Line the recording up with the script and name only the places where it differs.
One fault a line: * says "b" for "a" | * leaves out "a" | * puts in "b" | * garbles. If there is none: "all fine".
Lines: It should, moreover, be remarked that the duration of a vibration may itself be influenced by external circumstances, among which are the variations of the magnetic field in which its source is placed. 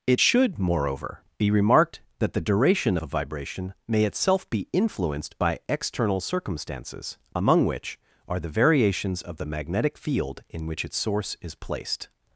* leaves out "of"